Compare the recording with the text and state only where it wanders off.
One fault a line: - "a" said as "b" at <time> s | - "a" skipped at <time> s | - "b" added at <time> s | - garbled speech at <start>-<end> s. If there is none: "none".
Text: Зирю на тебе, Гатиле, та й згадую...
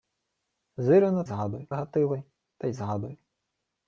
- "тебе" said as "згадую" at 1.2 s